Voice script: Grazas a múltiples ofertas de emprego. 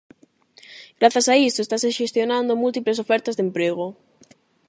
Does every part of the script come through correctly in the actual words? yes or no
no